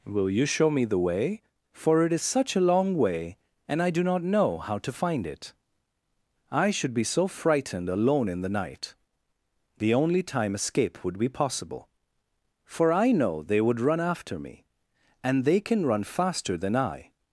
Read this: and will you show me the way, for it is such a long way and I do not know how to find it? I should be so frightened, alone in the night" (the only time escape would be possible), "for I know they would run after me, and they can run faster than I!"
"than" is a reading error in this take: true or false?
false